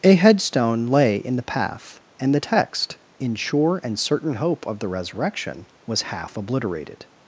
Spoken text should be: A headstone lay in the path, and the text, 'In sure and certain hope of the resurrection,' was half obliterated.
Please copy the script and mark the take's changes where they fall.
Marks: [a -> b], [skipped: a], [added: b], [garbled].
A headstone lay in the path, and the text, 'In sure and certain hope of the resurrection,' was half obliterated.